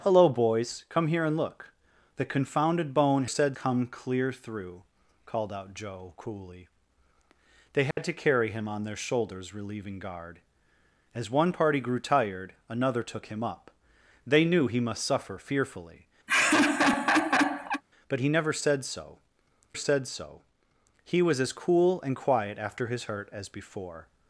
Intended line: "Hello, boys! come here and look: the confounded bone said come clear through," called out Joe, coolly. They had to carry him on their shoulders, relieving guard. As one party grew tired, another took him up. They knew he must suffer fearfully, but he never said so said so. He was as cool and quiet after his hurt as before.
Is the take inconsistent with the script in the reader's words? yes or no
no